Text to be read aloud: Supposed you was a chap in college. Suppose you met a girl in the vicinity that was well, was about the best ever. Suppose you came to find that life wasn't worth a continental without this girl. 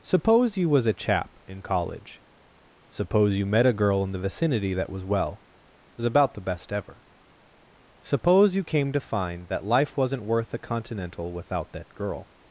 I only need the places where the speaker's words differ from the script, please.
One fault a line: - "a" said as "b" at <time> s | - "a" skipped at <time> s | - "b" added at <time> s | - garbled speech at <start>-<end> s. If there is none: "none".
- "Supposed" said as "Suppose" at 0.0 s
- "this" said as "that" at 11.7 s